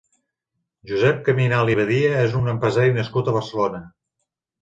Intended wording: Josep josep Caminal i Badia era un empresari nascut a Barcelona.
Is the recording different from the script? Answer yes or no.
yes